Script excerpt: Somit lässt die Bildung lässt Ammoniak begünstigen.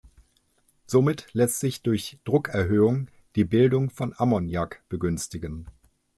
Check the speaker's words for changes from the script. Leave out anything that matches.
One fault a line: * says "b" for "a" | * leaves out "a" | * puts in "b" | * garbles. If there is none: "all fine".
* puts in "sich durch Druckerhöhung"
* says "von" for "lässt"